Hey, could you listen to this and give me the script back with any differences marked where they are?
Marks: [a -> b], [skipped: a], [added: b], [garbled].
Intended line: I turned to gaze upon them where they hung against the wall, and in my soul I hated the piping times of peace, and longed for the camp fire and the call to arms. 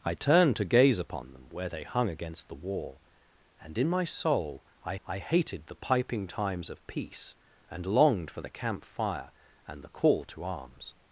I turned to gaze upon them where they hung against the wall, and in my soul I [added: I] hated the piping times of peace, and longed for the camp fire and the call to arms.